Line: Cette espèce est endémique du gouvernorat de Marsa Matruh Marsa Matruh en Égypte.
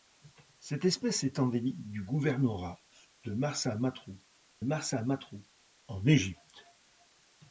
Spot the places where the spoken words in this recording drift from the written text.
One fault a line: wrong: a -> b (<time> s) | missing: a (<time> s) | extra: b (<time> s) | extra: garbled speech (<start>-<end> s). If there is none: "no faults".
no faults